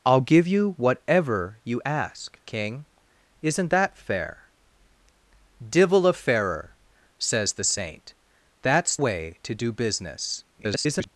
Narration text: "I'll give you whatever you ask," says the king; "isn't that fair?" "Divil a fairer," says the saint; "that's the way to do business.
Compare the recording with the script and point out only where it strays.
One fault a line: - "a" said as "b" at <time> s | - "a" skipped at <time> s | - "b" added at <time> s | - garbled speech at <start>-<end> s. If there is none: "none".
- "says the" skipped at 2.4 s
- "the" skipped at 9.0 s
- garbled speech at 10.5-11.1 s